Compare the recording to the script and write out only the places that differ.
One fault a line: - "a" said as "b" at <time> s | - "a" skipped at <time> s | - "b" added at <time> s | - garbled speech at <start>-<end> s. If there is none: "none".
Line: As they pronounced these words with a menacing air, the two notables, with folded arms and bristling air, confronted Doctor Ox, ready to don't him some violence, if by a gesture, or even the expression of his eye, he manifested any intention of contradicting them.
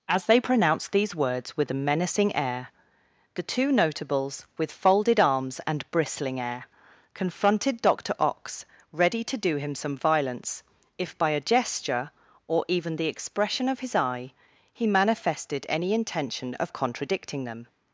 - "don't" said as "do" at 9.4 s